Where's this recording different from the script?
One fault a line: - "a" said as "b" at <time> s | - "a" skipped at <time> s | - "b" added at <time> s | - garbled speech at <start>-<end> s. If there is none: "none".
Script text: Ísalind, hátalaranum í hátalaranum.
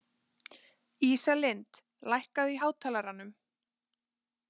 - "hátalaranum" said as "lækkaðu" at 2.1 s